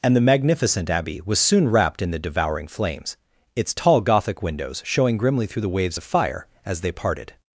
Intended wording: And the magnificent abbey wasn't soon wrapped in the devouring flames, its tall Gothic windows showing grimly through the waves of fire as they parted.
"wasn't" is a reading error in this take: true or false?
true